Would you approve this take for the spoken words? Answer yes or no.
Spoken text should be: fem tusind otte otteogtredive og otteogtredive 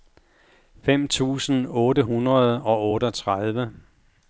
no